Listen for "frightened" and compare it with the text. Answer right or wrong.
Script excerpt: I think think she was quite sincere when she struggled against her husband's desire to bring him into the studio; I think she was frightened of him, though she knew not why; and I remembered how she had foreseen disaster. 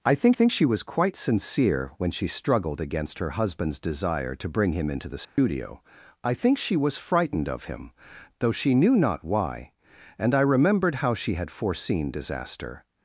right